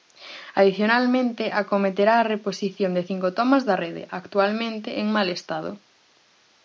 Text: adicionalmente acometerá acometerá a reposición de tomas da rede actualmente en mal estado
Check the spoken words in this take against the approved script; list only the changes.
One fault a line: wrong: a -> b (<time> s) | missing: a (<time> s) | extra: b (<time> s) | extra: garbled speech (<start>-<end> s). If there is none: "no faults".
missing: acometerá (2.1 s)
extra: cinco (3.1 s)